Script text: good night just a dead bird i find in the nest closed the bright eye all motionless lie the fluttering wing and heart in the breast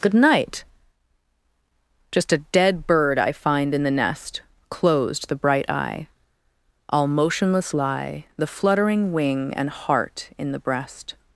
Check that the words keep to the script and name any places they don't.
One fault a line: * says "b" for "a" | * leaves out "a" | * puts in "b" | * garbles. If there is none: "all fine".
all fine